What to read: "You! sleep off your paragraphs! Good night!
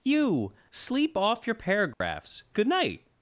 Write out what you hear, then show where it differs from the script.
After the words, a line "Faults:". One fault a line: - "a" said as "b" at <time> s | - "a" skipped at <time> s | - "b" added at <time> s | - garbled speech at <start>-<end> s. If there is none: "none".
"You! sleep off your paragraphs! Good night!
Faults:
none